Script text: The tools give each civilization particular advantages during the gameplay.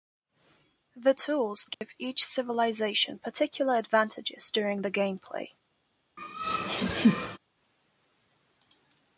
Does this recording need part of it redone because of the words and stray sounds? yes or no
yes